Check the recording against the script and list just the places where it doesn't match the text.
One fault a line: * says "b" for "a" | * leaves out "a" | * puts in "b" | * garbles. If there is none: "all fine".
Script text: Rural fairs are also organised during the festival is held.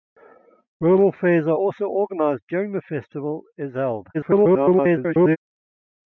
* garbles